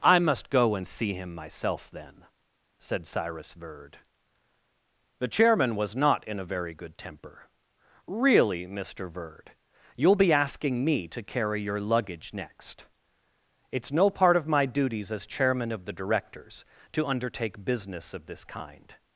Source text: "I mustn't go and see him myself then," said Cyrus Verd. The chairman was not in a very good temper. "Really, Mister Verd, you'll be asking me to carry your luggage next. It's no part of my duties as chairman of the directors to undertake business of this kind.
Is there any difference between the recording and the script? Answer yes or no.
yes